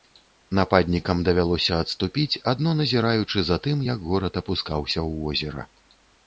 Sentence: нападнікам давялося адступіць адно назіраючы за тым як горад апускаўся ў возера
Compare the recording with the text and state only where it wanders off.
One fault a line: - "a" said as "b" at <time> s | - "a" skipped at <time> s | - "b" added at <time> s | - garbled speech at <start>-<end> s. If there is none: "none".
none